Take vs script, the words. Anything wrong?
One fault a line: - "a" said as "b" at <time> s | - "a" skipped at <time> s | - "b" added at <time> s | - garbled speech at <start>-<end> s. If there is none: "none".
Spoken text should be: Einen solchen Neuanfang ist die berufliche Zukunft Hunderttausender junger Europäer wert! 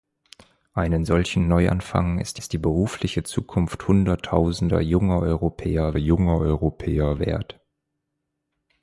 - "ist" added at 2.3 s
- "junger Europäer" added at 5.9 s